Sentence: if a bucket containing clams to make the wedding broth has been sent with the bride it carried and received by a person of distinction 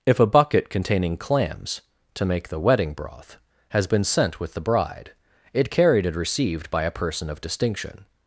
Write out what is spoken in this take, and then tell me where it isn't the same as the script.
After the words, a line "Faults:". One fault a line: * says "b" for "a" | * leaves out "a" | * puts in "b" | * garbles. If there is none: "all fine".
if a bucket containing clams to make the wedding broth has been sent with the bride it carried and received by a person of distinction
Faults:
all fine